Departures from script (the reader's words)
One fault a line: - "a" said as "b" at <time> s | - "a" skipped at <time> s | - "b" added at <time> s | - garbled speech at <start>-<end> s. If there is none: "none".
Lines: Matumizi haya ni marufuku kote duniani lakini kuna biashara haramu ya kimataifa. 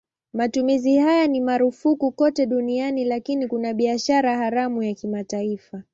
none